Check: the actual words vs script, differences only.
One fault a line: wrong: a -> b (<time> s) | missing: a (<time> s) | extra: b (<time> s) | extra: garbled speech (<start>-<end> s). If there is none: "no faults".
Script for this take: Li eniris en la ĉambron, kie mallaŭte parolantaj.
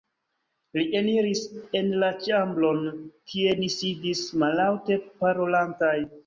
extra: ni sidis (3.6 s)